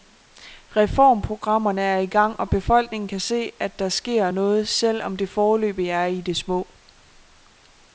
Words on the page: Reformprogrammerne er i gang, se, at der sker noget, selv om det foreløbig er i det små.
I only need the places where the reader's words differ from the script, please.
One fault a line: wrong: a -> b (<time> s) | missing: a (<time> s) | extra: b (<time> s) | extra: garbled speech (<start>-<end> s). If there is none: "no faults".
extra: og befolkningen kan (2.4 s)